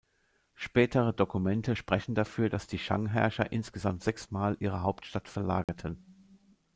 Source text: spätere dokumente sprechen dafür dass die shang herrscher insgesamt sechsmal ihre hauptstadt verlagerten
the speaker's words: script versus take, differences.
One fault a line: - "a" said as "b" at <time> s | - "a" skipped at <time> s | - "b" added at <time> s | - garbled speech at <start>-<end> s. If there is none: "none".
none